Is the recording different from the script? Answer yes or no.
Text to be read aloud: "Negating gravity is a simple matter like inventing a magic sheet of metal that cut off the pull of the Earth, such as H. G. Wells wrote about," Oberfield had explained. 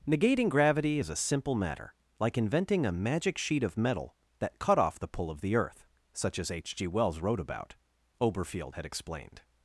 no